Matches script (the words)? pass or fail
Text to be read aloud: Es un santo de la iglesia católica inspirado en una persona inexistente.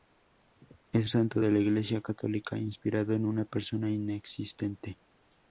fail